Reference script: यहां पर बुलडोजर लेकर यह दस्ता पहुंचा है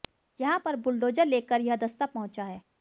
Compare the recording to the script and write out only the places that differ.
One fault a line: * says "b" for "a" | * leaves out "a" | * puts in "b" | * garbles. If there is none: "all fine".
all fine